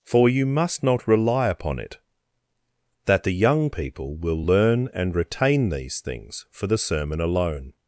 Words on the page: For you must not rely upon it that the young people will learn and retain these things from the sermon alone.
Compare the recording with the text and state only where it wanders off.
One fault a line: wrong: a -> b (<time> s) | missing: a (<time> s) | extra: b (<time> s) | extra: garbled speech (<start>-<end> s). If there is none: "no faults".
wrong: from -> for (6.5 s)